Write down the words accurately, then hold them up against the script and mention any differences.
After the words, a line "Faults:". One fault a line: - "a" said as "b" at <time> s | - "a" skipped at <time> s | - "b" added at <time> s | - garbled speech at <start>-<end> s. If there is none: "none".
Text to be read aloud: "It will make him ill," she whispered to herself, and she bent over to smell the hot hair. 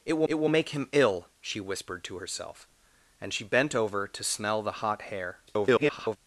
"It will it will make him ill," she whispered to herself, and she bent over to smell the hot hair. [garbled]
Faults:
- "it will" added at 0.2 s
- garbled speech at 5.5-6.2 s